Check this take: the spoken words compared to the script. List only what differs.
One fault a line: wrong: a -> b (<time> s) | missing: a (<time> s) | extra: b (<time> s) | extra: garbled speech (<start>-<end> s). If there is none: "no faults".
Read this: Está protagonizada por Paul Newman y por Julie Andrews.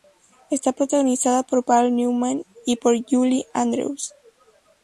no faults